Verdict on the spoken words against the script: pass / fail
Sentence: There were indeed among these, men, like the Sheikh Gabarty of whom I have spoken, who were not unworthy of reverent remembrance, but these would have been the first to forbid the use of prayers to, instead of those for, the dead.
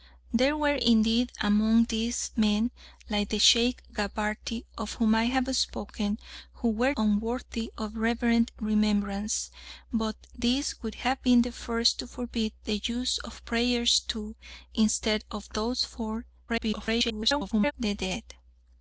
fail